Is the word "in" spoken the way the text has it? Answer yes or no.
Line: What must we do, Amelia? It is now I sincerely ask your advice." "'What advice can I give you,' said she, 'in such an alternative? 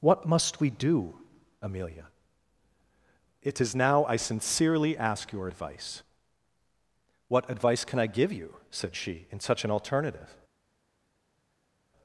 yes